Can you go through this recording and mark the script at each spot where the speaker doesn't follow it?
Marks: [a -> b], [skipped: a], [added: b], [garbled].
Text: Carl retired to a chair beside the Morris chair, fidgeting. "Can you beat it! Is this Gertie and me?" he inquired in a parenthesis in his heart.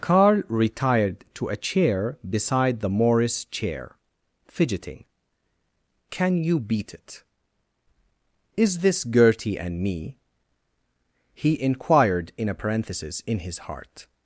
Carl retired to a chair beside the Morris chair, fidgeting. "Can you beat it! Is this Gertie and me?" he inquired in a parenthesis in his heart.